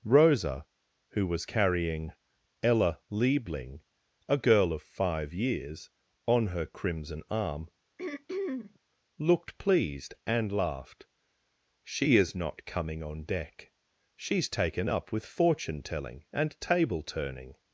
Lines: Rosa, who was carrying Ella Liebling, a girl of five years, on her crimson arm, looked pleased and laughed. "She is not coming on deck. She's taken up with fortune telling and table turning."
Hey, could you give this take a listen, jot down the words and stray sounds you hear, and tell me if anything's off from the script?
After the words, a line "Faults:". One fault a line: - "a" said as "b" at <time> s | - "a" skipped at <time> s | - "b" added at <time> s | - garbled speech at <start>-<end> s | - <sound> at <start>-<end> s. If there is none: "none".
Rosa, who was carrying Ella Liebling, a girl of five years, on her crimson arm, looked pleased and laughed. "She is not coming on deck. She's taken up with fortune telling and table turning."
Faults:
- throat clearing at 8.0-8.8 s